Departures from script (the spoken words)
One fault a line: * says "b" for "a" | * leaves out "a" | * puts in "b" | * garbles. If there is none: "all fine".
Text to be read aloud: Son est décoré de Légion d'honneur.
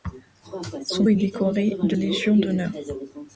all fine